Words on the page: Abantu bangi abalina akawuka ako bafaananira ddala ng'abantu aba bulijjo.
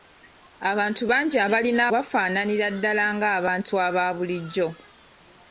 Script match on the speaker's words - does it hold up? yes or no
no